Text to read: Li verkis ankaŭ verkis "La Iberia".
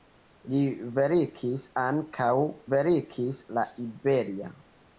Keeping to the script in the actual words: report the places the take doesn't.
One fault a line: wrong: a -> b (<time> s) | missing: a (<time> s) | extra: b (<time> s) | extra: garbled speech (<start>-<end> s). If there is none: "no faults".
no faults